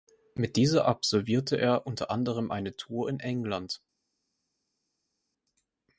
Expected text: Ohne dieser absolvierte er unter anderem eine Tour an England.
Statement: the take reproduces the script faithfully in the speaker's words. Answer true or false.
false